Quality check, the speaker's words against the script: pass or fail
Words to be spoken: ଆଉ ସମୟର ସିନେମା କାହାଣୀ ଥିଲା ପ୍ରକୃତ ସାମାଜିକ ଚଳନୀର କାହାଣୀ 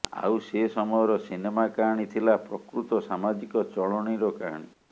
fail